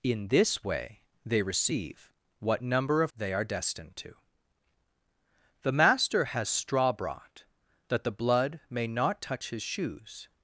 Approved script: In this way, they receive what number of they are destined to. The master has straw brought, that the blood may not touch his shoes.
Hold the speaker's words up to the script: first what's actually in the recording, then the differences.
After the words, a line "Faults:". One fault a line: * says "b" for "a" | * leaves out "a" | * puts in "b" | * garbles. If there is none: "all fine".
In this way, they receive what number of they are destined to. The master has straw brought, that the blood may not touch his shoes.
Faults:
all fine